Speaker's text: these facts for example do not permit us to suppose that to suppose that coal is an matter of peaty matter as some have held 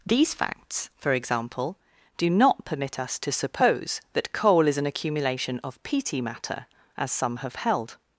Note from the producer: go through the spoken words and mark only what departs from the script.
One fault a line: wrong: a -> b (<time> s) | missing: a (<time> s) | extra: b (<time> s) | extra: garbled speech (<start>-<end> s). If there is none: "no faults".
missing: to suppose that (4.3 s)
wrong: matter -> accumulation (4.8 s)